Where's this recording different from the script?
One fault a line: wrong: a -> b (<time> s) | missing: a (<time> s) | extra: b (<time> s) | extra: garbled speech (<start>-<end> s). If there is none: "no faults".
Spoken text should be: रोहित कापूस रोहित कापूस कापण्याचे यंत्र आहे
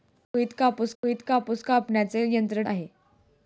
no faults